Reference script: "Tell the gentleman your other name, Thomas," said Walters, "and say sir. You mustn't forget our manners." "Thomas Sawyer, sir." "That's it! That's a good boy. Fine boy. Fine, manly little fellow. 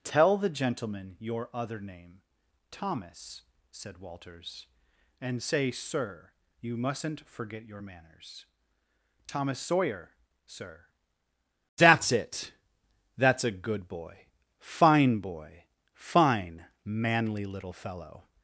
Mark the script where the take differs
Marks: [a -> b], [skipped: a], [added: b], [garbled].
"Tell the gentleman your other name, Thomas," said Walters, "and say sir. You mustn't forget [our -> your] manners." "Thomas Sawyer, sir." "That's it! That's a good boy. Fine boy. Fine, manly little fellow.